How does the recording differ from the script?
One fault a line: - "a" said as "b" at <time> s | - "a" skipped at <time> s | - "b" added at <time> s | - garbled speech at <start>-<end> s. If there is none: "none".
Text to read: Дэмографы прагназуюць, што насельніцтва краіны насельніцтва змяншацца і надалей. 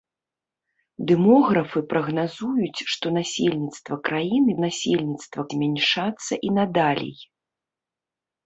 none